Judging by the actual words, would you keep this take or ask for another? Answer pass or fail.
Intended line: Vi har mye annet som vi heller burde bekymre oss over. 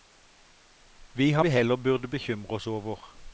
fail